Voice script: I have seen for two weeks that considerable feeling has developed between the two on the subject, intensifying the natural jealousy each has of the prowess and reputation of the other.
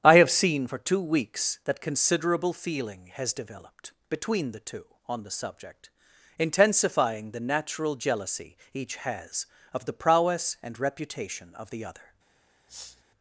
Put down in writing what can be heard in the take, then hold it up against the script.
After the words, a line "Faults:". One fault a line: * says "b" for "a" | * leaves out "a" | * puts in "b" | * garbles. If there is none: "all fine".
I have seen for two weeks that considerable feeling has developed between the two on the subject, intensifying the natural jealousy each has of the prowess and reputation of the other.
Faults:
all fine